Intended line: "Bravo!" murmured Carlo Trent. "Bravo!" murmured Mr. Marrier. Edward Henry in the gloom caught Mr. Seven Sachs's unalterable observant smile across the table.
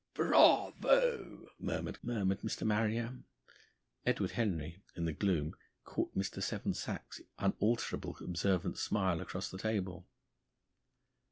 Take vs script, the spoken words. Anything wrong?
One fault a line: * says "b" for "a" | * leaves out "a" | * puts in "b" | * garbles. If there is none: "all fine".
* leaves out "Carlo Trent Bravo"